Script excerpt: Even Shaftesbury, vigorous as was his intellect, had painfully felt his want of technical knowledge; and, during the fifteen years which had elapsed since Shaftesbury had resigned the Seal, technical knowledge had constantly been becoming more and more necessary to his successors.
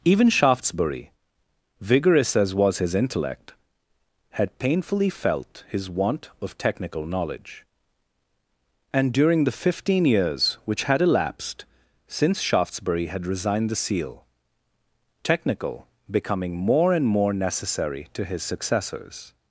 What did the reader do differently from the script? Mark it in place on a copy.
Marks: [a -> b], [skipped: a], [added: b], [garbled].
Even Shaftesbury, vigorous as was his intellect, had painfully felt his want of technical knowledge; and, during the fifteen years which had elapsed since Shaftesbury had resigned the Seal, technical [skipped: knowledge had constantly been] becoming more and more necessary to his successors.